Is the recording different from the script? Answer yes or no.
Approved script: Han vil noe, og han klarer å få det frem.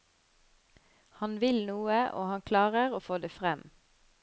no